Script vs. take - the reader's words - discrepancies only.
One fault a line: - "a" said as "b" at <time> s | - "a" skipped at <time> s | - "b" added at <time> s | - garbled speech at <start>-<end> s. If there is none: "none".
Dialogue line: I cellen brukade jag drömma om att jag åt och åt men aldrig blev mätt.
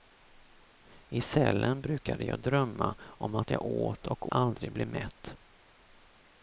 - "åt men" skipped at 4.3 s